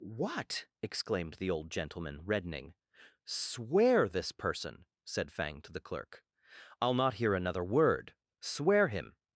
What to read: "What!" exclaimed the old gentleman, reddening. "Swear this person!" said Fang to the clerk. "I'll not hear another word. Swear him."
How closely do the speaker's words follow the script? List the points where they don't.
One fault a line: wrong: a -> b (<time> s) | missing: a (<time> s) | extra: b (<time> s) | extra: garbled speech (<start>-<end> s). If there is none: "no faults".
no faults